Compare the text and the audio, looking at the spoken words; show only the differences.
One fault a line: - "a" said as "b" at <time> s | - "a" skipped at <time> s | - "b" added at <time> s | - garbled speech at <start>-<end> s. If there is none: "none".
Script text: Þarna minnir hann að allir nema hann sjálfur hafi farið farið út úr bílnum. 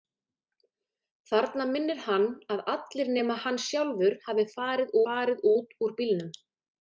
none